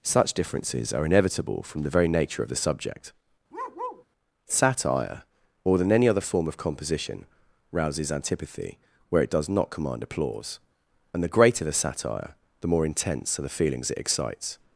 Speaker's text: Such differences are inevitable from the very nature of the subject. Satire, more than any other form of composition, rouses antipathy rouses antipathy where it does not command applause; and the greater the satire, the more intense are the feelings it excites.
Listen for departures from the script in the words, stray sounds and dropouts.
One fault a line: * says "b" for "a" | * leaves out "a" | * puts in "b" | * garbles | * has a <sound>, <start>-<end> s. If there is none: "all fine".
* has a bark, 3.5-4.1 s
* leaves out "rouses antipathy"